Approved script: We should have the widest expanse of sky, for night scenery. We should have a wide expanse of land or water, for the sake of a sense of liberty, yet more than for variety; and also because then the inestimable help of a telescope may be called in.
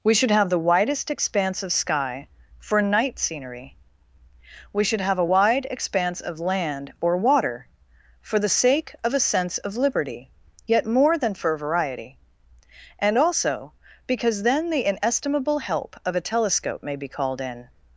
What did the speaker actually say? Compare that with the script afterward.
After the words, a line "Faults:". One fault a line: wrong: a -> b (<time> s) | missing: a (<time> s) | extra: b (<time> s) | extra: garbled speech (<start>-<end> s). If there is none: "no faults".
We should have the widest expanse of sky, for night scenery. We should have a wide expanse of land or water, for the sake of a sense of liberty, yet more than for variety; and also because then the inestimable help of a telescope may be called in.
Faults:
no faults